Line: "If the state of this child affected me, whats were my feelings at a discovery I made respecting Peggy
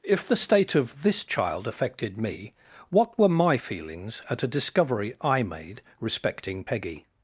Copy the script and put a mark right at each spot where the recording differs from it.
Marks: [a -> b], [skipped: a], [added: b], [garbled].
"If the state of this child affected me, [whats -> what] were my feelings at a discovery I made respecting Peggy